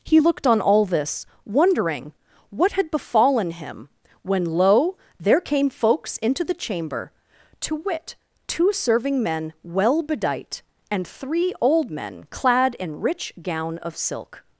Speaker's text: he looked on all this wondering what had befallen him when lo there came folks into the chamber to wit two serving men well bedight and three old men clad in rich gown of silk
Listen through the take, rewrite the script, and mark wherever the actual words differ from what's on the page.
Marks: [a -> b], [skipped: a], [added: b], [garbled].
he looked on all this wondering what had befallen him when lo there came folks into the chamber to wit two serving men well bedight and three old men clad in rich gown of silk